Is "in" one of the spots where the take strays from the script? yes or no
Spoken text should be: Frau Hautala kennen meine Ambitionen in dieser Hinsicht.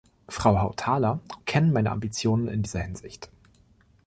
no